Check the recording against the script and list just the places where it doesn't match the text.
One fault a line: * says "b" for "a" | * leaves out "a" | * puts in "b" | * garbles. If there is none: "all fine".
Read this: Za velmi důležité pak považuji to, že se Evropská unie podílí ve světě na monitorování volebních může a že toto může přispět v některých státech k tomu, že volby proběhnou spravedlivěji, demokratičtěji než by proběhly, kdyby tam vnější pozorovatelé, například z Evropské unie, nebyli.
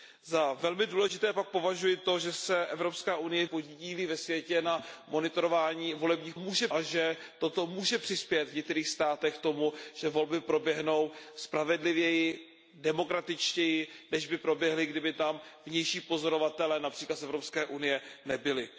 all fine